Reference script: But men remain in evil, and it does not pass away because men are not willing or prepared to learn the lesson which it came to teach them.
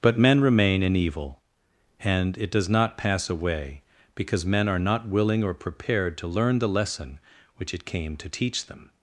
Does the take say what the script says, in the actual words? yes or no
yes